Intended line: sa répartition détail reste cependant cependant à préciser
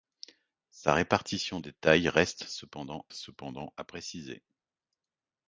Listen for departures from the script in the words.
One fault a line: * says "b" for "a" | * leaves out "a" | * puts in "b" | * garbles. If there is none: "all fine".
all fine